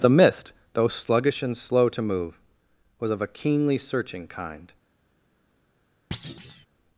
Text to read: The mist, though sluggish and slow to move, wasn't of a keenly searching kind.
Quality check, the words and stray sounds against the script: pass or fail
fail